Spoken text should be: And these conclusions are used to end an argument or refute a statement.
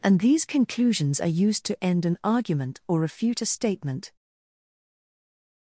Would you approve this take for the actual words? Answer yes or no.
yes